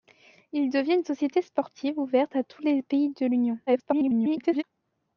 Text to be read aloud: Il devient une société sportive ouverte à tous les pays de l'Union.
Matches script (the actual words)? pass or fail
fail